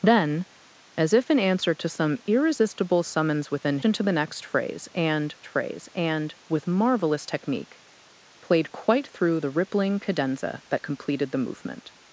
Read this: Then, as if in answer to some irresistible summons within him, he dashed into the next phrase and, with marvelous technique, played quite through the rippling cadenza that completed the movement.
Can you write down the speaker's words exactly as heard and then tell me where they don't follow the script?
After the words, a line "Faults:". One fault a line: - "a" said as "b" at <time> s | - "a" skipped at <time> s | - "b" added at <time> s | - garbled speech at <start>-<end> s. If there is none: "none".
Then, as if in answer to some irresistible summons within into the next phrase and phrase and, with marvelous technique, played quite through the rippling cadenza that completed the movement.
Faults:
- "him he dashed" skipped at 3.8 s
- "phrase and" added at 5.5 s